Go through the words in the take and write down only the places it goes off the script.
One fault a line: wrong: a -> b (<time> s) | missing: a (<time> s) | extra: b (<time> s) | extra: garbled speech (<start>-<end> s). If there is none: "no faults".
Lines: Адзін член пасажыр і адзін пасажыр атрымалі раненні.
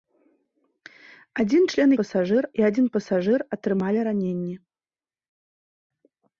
no faults